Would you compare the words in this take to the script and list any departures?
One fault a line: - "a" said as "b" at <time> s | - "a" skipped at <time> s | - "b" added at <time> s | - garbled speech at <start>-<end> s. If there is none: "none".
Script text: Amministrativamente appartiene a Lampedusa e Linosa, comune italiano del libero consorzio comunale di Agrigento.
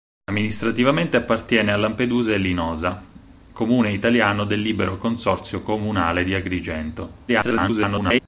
- garbled speech at 7.3-8.2 s